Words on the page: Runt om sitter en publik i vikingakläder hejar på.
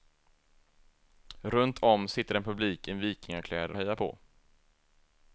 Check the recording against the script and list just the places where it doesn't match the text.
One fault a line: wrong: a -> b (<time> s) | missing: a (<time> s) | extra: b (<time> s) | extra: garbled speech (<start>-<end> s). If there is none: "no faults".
no faults